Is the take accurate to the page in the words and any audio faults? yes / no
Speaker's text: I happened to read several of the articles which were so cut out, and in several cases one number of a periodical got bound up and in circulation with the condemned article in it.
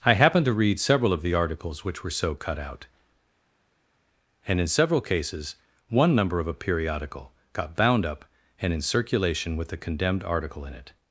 yes